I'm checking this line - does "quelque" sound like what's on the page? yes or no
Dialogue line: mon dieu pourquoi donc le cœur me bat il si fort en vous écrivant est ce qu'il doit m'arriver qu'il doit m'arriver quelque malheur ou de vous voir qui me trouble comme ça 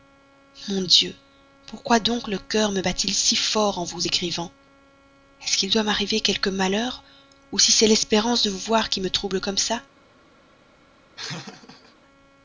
no